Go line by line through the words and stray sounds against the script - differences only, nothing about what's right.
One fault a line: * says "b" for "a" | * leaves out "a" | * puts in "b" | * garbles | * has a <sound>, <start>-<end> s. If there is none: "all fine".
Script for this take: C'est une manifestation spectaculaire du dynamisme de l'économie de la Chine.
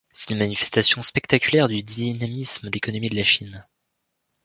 * leaves out "de"